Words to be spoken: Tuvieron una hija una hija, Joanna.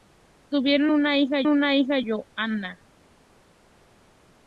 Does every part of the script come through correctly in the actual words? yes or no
yes